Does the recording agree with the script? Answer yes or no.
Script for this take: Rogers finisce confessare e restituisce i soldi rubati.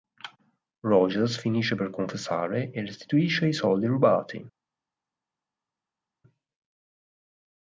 no